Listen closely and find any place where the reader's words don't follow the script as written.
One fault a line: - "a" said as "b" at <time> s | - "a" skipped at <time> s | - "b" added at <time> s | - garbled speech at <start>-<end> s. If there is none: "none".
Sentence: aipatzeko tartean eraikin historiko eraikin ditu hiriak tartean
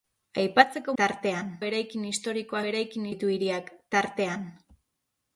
none